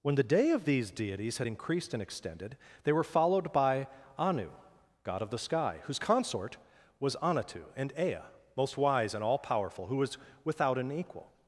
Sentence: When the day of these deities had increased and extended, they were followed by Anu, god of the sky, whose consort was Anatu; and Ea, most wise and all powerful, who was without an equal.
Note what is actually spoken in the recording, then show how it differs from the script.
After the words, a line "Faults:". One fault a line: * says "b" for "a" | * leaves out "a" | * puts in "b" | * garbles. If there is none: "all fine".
When the day of these deities had increased and extended, they were followed by Anu, god of the sky, whose consort was Anatu; and Ea, most wise and all powerful, who was without an equal.
Faults:
all fine